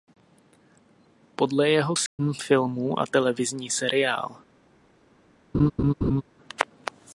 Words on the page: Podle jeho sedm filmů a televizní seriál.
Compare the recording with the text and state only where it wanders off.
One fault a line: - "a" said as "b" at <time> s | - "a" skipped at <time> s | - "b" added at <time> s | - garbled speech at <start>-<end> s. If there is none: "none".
none